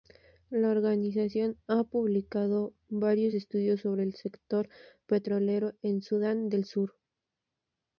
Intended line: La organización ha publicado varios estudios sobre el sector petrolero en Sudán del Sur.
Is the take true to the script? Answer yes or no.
yes